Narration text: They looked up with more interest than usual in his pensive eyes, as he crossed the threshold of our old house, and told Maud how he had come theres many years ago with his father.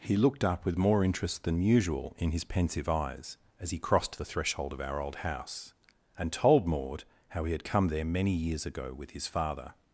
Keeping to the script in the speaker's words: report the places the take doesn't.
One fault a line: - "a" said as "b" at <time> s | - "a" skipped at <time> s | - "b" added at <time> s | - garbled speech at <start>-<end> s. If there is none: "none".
- "They" said as "He" at 0.0 s
- "theres" said as "there" at 7.9 s